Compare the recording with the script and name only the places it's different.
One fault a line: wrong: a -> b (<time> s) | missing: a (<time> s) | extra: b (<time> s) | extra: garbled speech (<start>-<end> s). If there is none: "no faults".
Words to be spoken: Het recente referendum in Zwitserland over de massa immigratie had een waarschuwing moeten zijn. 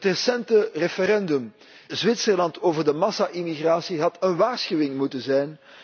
missing: in (1.5 s)